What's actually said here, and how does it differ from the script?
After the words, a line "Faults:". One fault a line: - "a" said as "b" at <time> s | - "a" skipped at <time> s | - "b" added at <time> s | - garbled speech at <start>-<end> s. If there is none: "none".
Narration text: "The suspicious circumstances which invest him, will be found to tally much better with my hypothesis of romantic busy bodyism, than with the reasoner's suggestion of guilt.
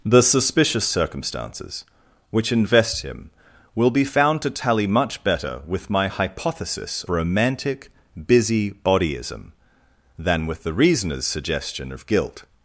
"The suspicious circumstances which invest him, will be found to tally much better with my hypothesis romantic busy bodyism, than with the reasoner's suggestion of guilt.
Faults:
- "of" skipped at 7.0 s